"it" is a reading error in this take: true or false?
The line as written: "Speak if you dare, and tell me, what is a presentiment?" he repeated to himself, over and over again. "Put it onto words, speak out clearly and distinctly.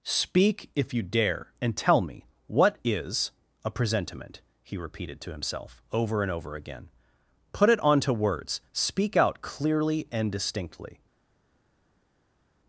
false